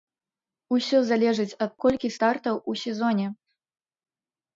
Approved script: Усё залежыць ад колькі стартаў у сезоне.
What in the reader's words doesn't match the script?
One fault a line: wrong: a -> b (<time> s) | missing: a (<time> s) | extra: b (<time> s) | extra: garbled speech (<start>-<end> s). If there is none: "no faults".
no faults